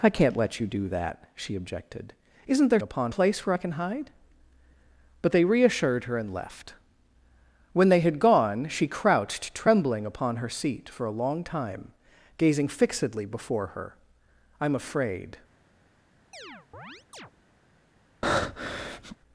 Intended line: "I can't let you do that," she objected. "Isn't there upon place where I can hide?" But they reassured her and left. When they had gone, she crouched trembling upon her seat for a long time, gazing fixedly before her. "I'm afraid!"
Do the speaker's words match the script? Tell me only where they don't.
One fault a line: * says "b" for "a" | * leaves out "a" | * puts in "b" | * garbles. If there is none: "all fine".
all fine